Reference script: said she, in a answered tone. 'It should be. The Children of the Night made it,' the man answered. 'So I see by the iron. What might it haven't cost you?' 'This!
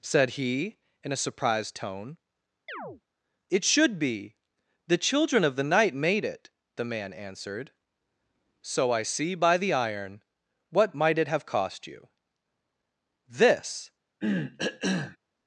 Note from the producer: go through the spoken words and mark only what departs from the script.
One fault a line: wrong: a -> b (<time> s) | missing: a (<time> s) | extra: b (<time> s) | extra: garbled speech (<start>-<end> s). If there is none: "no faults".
wrong: she -> he (0.3 s)
wrong: answered -> surprised (1.2 s)
wrong: haven't -> have (11.3 s)